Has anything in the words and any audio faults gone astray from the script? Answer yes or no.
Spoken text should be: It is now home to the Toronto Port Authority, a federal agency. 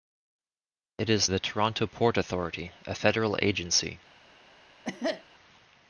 yes